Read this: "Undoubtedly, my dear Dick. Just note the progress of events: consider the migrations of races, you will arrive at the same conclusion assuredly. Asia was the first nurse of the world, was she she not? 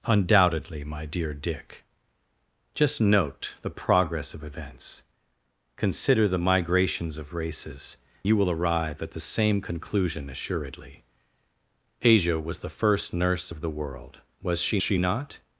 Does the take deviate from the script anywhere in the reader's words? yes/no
no